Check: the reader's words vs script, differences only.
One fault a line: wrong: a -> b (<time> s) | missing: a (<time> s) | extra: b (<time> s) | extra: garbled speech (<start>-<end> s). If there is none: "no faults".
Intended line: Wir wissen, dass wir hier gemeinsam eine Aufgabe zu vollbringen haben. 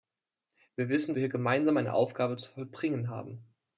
missing: dass (1.1 s)